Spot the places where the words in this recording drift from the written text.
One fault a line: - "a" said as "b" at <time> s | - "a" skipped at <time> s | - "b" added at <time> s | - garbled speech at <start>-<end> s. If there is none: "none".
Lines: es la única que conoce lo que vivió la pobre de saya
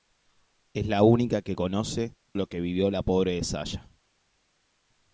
none